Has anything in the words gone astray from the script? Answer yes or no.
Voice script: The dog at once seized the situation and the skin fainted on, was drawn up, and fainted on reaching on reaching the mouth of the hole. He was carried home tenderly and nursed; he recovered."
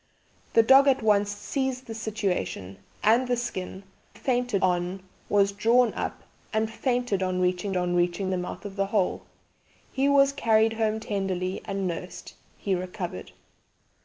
no